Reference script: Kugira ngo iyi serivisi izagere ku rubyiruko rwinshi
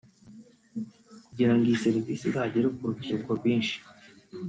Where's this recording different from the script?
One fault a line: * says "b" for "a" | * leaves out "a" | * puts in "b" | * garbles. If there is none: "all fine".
all fine